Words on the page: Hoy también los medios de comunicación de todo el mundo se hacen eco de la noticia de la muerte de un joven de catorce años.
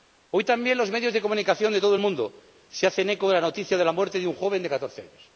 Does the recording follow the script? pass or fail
pass